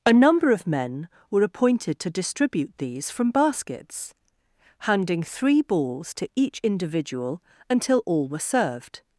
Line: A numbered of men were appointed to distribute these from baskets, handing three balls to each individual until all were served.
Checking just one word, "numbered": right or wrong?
wrong